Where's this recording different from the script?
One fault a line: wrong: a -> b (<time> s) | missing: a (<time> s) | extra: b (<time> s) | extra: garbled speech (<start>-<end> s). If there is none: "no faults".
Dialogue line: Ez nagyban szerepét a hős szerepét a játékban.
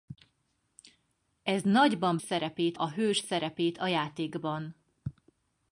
no faults